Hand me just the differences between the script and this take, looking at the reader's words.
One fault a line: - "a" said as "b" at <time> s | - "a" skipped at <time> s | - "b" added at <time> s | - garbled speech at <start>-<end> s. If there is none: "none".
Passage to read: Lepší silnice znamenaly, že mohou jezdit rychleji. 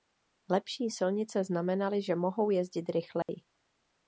none